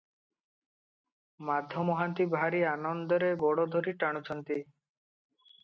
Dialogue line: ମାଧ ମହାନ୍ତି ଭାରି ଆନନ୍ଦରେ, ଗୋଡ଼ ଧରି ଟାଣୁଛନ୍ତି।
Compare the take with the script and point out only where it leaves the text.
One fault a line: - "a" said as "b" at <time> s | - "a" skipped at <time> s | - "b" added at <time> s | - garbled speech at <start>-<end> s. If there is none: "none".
none